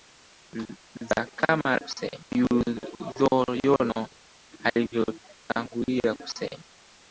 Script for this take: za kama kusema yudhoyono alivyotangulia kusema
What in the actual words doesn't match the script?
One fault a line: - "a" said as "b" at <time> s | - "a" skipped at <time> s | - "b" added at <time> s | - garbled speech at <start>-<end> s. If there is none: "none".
none